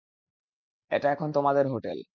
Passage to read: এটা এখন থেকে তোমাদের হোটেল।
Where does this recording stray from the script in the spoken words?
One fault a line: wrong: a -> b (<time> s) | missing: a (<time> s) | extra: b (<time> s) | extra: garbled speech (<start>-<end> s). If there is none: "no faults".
missing: থেকে (1.3 s)